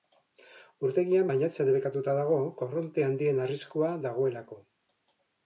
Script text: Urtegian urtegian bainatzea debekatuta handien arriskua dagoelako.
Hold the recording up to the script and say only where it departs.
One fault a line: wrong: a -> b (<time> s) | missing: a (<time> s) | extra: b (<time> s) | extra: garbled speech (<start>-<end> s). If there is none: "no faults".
missing: urtegian (1.3 s)
extra: dago korronte (2.2 s)